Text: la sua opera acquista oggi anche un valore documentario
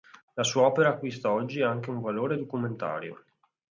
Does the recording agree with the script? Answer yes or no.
yes